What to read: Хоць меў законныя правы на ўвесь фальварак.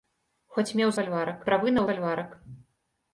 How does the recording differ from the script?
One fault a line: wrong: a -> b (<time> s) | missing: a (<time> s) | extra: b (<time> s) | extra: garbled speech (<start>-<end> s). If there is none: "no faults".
wrong: законныя -> фальварак (1.0 s)
missing: ўвесь (1.8 s)